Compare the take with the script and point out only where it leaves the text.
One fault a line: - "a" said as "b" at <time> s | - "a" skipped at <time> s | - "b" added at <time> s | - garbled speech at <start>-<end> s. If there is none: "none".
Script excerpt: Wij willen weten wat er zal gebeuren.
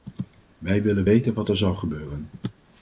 none